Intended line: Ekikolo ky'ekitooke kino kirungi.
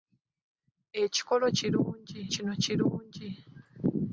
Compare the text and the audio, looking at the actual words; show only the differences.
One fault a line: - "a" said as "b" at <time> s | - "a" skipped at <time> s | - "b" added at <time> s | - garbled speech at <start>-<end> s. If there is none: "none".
- "ky'ekitooke" said as "kirungi" at 1.6 s